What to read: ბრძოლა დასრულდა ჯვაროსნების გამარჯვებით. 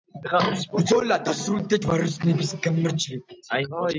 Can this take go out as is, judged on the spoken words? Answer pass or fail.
pass